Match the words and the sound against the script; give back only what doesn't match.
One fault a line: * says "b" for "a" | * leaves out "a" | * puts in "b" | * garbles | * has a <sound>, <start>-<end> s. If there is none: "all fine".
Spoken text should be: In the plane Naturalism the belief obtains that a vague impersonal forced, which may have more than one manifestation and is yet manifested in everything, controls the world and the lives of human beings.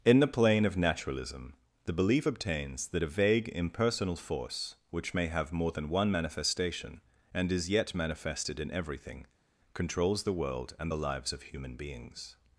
* puts in "of"
* says "force" for "forced"